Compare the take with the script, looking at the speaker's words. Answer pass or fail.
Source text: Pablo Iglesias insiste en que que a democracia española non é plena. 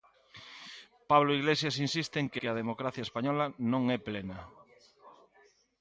pass